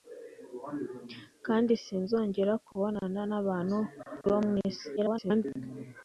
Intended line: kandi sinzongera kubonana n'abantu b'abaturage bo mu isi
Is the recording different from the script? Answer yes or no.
yes